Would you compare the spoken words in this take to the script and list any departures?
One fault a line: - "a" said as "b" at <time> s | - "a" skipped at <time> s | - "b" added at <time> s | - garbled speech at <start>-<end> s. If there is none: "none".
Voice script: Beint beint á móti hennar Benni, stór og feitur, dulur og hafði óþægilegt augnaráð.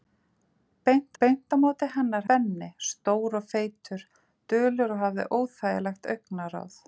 none